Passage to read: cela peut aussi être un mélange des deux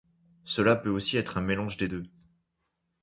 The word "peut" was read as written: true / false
true